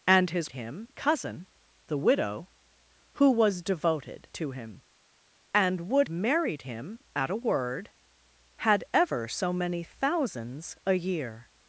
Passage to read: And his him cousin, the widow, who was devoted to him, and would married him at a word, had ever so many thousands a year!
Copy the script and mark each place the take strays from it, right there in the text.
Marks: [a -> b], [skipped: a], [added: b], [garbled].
And his him cousin, the widow, who was devoted to him, and would married him at a word, had ever so many thousands a year!